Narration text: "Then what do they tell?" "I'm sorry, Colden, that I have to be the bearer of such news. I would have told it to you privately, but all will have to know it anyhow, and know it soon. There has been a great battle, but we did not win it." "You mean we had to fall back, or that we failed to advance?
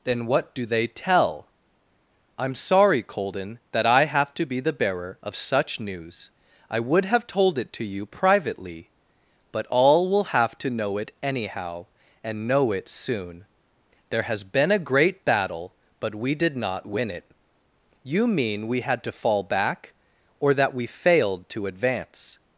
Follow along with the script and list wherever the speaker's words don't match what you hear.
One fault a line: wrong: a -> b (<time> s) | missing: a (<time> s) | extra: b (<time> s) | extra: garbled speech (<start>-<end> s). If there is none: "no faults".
no faults